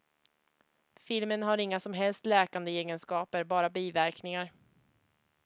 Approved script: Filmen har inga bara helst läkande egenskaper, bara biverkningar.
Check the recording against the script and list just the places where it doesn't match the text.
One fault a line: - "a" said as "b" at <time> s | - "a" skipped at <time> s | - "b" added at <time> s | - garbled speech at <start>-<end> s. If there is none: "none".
- "bara" said as "som" at 1.8 s